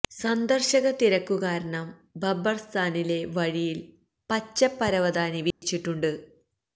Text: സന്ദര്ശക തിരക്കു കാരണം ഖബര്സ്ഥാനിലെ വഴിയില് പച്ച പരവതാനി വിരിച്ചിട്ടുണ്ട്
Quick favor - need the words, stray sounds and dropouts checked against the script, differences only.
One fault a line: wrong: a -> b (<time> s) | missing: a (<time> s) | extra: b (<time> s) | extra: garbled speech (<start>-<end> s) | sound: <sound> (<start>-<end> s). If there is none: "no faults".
sound: dropout (5.5-5.6 s)